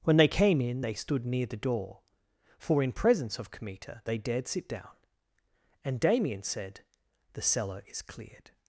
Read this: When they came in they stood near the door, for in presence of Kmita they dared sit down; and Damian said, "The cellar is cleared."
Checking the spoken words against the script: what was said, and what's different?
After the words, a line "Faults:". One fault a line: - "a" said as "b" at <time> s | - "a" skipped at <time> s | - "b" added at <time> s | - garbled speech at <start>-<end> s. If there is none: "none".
When they came in they stood near the door, for in presence of Kmita they dared sit down; and Damian said, "The cellar is cleared."
Faults:
none